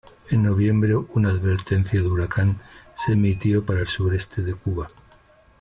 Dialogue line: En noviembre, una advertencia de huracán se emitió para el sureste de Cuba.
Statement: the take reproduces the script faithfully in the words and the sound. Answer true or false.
true